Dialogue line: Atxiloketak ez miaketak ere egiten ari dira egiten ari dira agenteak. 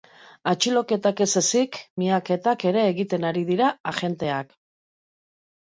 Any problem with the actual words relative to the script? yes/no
yes